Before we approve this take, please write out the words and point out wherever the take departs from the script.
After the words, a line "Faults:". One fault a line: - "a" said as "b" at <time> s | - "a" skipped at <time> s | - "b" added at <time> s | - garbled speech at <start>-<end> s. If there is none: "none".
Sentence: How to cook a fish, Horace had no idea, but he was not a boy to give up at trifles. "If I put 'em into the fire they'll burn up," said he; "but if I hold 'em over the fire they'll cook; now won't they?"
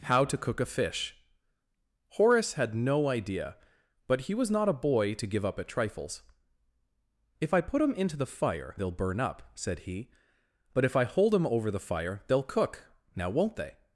How to cook a fish, Horace had no idea, but he was not a boy to give up at trifles. "If I put 'em into the fire they'll burn up," said he; "but if I hold 'em over the fire they'll cook; now won't they?"
Faults:
none